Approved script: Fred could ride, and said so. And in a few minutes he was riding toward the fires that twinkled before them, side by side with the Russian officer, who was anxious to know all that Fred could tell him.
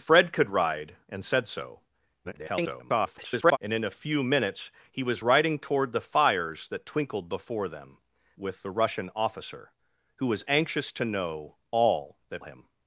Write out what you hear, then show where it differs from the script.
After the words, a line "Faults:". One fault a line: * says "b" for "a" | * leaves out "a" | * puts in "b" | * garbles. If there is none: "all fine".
Fred could ride, and said so. [garbled] And in a few minutes he was riding toward the fires that twinkled before them, with the Russian officer, who was anxious to know all that Him.
Faults:
* garbles
* leaves out "side by side"
* leaves out "Fred could tell"